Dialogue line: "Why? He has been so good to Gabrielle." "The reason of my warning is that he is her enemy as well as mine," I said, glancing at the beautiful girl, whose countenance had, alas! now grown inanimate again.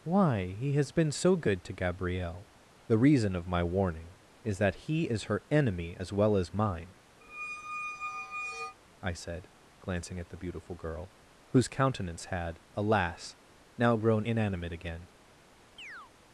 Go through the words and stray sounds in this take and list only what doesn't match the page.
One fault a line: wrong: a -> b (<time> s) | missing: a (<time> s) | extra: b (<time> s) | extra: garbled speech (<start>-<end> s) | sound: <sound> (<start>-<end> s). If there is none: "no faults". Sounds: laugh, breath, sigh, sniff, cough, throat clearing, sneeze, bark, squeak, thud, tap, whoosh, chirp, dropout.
sound: squeak (7.2-8.8 s)
sound: chirp (15.8-16.1 s)